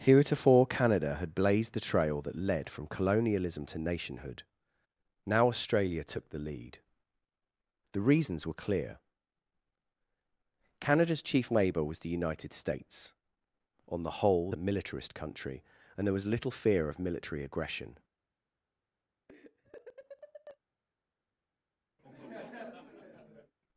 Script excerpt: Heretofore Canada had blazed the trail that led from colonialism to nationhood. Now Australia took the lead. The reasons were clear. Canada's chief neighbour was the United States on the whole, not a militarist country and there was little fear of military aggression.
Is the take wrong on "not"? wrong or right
wrong